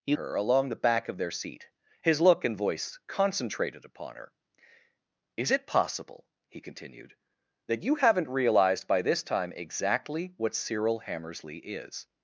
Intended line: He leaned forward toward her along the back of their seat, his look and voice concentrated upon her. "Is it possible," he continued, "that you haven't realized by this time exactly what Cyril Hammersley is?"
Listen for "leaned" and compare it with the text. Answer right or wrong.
wrong